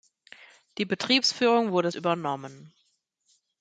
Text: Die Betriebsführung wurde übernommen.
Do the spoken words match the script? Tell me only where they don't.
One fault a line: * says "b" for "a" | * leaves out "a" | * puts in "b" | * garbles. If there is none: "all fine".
all fine